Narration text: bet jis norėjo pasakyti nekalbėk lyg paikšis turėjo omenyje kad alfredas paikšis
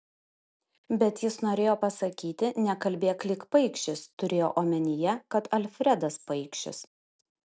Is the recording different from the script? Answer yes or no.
no